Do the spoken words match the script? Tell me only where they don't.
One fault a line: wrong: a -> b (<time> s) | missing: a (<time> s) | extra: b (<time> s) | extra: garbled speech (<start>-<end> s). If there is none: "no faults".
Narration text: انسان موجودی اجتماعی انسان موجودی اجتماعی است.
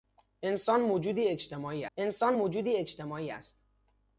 no faults